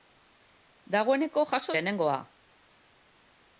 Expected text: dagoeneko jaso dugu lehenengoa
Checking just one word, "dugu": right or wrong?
wrong